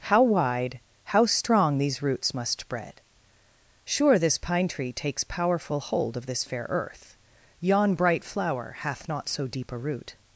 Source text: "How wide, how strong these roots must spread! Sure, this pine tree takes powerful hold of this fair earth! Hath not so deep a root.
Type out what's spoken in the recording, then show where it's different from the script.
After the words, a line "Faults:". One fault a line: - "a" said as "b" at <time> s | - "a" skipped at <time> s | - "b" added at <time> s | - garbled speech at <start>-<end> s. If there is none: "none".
"How wide, how strong these roots must spread! Sure, this pine tree takes powerful hold of this fair earth! Yon bright flower hath not so deep a root.
Faults:
- "Yon bright flower" added at 7.6 s